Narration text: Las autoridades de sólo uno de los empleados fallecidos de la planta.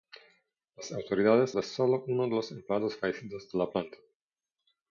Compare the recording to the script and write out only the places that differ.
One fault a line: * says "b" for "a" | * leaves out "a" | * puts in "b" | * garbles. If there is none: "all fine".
all fine